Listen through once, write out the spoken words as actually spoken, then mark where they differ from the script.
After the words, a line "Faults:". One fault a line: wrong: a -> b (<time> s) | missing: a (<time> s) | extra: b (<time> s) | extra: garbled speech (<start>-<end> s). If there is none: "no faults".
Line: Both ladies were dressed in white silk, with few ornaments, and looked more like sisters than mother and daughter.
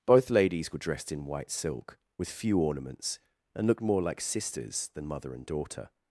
Both ladies were dressed in white silk, with few ornaments, and looked more like sisters than mother and daughter.
Faults:
no faults